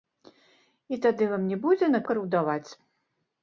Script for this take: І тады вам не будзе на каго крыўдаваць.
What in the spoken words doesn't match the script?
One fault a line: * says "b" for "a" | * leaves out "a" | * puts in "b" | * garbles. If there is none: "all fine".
* leaves out "каго"